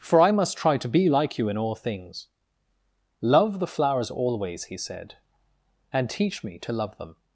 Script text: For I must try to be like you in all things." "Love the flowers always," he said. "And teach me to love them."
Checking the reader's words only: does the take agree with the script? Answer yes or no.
yes